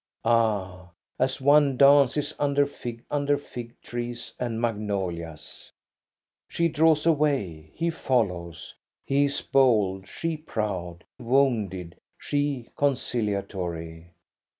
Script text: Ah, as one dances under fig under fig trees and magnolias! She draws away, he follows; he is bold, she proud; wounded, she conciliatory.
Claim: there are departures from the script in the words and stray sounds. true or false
false